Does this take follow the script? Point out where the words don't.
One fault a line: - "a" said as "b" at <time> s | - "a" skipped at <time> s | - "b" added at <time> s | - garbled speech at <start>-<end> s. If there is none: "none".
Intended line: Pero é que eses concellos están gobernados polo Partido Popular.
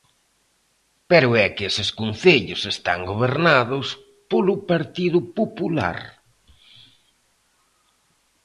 none